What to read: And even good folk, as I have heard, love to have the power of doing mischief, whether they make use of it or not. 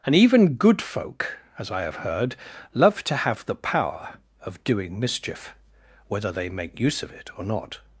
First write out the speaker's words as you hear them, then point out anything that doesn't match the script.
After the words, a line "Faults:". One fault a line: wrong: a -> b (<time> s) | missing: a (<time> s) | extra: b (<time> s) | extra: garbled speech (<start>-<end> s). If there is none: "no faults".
And even good folk, as I have heard, love to have the power of doing mischief, whether they make use of it or not.
Faults:
no faults